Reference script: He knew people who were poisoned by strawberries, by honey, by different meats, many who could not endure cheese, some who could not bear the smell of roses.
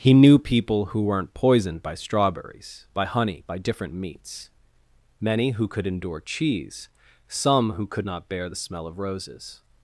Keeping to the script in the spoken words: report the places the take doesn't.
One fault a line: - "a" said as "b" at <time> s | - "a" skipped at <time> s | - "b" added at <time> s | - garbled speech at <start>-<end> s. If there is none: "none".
- "were" said as "weren't" at 1.0 s
- "not" skipped at 5.8 s